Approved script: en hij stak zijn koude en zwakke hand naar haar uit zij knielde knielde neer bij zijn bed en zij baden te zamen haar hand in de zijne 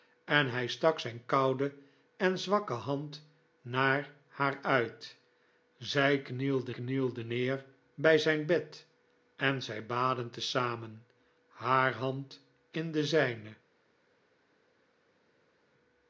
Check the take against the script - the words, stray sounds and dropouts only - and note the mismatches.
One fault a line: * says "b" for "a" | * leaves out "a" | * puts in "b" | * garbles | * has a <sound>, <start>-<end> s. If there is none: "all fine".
all fine